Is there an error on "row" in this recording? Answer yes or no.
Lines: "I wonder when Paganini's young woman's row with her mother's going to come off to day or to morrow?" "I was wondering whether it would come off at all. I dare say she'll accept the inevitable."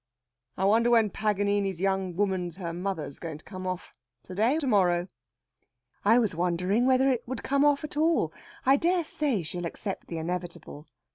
yes